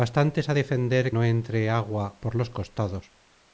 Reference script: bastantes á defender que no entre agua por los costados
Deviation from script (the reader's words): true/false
true